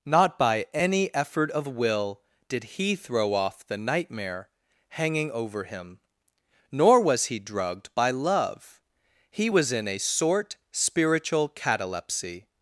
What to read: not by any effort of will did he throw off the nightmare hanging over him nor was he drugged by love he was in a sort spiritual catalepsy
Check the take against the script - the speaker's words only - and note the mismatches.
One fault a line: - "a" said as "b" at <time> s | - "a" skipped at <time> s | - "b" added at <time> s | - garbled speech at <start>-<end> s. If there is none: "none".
none